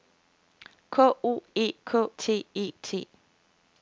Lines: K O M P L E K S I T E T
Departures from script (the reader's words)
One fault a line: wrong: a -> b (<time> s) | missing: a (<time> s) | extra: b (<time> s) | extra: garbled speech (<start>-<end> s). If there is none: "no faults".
missing: M P L (1.4 s)
missing: S I (2.1 s)